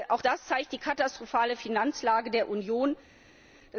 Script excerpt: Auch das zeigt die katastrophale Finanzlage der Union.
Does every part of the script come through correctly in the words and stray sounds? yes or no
yes